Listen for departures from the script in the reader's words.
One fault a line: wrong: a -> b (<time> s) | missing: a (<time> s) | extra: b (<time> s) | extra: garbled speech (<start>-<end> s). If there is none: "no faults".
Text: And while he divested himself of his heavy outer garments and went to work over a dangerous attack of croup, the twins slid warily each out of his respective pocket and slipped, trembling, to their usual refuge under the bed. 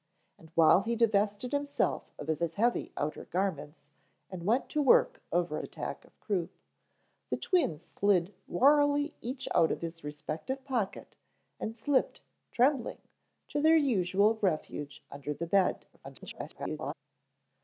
extra: his (2.4 s)
missing: a dangerous (5.6 s)
extra: garbled speech (15.9-16.9 s)